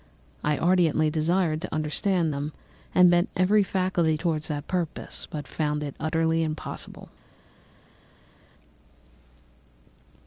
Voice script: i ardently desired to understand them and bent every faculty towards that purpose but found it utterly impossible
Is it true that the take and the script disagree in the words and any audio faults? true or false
false